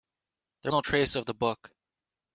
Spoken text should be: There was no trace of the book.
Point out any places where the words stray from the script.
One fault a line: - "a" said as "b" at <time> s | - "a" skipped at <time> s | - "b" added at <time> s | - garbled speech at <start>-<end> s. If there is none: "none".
- "was" skipped at 0.7 s